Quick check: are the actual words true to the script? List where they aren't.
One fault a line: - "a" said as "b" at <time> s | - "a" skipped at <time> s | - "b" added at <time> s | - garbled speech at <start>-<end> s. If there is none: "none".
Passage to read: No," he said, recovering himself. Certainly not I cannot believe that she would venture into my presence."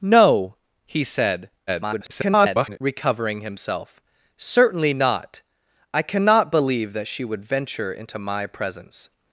- garbled speech at 1.7-2.8 s